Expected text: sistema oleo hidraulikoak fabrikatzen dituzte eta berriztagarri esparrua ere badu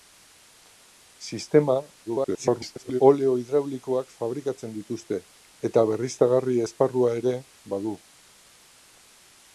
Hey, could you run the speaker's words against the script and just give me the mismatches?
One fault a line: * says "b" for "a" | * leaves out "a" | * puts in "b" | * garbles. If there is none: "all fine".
* garbles